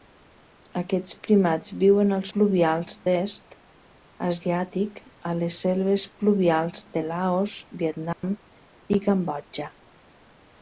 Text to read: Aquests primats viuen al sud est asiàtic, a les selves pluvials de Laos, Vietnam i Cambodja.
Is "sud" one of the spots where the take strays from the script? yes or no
yes